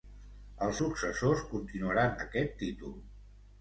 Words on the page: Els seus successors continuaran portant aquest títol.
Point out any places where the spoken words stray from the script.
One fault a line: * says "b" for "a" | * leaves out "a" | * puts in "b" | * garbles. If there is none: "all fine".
* leaves out "seus"
* leaves out "portant"